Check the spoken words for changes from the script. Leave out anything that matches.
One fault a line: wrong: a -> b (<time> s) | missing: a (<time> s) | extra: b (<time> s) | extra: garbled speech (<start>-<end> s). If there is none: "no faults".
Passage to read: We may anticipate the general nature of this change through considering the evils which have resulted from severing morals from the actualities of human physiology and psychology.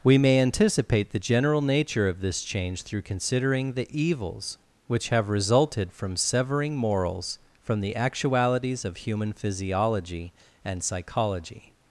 no faults